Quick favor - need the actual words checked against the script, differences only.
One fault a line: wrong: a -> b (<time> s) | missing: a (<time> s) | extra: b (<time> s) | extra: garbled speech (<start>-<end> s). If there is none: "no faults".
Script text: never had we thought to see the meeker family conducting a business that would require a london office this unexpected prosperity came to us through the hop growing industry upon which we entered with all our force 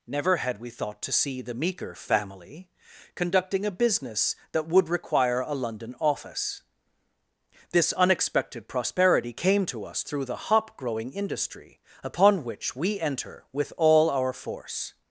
wrong: entered -> enter (13.0 s)